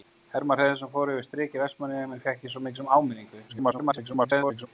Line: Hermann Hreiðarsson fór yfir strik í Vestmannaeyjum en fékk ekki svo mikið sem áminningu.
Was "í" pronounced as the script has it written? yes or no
yes